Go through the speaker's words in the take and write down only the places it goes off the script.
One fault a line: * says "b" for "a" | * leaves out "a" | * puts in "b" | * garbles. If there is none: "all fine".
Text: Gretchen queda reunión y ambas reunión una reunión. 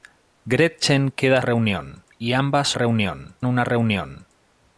all fine